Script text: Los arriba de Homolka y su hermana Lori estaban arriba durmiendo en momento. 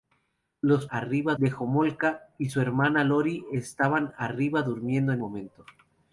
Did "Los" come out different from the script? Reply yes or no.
no